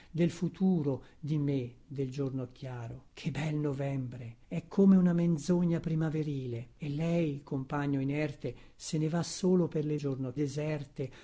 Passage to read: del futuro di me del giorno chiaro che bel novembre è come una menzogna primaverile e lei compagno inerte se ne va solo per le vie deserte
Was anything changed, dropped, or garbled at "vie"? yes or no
yes